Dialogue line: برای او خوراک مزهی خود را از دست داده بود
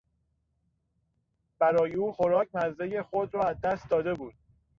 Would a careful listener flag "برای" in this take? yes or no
no